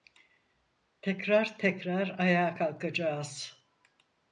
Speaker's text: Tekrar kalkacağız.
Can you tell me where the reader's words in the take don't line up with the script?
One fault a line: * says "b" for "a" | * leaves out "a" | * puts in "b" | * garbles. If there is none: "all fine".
* puts in "tekrar ayağa"